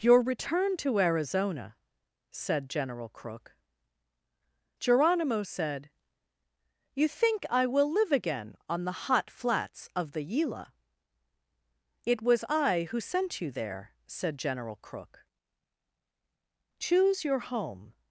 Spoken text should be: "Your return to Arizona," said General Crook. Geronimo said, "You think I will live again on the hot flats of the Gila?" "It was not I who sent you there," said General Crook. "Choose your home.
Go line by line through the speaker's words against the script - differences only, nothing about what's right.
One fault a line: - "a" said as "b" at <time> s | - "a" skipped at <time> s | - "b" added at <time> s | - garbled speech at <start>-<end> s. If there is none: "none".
- "not" skipped at 12.4 s